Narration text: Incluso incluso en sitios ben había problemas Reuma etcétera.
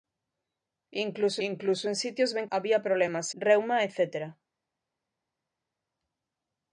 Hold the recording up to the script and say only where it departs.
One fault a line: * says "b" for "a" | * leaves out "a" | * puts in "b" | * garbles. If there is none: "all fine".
all fine